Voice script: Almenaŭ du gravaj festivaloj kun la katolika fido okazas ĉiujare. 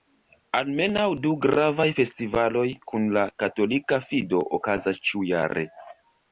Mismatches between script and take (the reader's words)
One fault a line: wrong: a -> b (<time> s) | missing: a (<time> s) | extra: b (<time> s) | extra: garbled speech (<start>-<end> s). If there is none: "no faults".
no faults